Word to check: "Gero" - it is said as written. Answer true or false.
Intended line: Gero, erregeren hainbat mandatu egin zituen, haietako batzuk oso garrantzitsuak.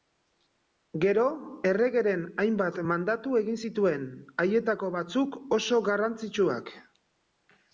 true